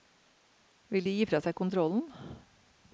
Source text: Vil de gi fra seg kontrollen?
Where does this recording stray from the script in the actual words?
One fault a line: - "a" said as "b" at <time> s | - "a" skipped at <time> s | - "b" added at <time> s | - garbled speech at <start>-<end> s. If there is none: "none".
none